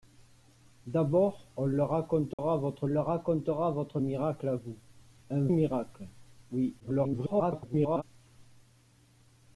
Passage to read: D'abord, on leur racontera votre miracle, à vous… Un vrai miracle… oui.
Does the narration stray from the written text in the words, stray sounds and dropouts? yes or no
yes